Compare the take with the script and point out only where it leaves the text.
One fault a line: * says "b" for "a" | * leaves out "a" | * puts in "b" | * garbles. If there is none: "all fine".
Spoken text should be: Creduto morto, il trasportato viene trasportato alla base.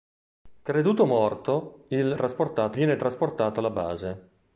all fine